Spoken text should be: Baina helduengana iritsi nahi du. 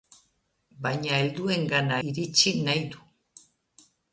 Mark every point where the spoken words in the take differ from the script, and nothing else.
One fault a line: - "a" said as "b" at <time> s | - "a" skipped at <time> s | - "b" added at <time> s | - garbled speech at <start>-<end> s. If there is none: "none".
none